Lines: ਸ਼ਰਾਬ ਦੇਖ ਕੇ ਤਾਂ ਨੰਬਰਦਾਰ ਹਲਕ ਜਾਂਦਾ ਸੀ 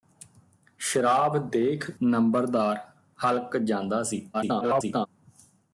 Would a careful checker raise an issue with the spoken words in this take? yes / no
yes